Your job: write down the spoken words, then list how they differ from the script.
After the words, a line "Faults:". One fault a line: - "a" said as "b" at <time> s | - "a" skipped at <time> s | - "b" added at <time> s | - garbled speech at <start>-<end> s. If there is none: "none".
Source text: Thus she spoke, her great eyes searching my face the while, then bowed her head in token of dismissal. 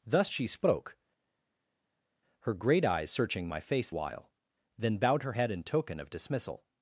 Thus she spoke, her great eyes searching my face while, then bowed her head in token of dismissal.
Faults:
- "the" skipped at 3.9 s